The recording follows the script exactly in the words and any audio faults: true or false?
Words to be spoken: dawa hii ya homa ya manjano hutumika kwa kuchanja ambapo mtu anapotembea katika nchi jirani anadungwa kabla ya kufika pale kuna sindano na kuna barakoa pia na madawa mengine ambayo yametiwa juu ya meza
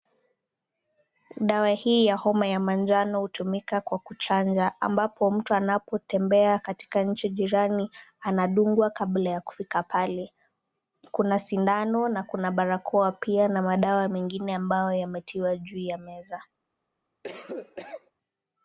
false